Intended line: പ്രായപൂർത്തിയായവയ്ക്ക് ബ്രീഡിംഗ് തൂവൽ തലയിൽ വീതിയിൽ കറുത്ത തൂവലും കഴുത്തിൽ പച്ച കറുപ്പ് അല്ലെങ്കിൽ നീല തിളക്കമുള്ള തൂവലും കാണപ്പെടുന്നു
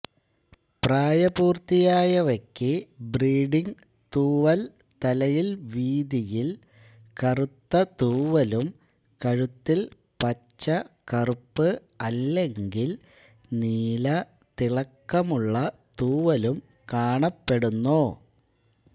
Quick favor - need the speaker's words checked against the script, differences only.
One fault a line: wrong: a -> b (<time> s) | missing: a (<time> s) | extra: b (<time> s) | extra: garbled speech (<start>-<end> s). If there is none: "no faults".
no faults